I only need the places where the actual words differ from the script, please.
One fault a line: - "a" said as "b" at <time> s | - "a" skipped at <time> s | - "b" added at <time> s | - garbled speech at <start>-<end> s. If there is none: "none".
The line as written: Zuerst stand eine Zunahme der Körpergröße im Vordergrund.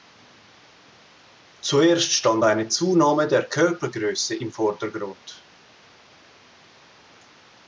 none